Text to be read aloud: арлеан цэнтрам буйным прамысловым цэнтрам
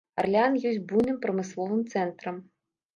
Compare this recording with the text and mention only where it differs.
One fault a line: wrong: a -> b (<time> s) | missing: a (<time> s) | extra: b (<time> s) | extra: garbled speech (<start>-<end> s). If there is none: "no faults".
wrong: цэнтрам -> ёсць (0.7 s)